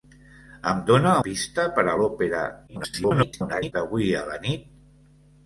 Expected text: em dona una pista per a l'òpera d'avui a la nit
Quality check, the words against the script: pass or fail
fail